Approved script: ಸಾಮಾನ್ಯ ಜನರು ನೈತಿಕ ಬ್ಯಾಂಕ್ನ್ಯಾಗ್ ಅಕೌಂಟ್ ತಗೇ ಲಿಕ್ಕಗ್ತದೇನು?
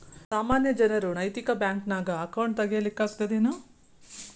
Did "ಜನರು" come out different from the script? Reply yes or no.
no